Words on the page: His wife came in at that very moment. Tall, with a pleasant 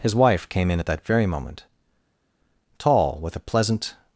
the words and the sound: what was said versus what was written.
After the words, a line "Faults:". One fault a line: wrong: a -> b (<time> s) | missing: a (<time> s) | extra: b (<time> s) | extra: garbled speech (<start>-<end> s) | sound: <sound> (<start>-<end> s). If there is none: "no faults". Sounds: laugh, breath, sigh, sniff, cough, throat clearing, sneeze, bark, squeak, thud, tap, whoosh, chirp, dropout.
His wife came in at that very moment. Tall, with a pleasant
Faults:
no faults